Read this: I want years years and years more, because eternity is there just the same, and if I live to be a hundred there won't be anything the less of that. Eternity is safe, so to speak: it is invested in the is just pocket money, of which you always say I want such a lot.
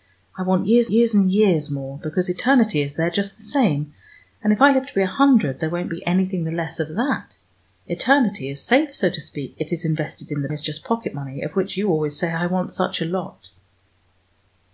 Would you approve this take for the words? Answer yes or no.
yes